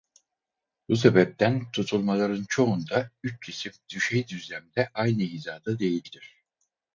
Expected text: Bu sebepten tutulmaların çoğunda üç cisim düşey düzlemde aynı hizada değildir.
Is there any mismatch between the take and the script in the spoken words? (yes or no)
no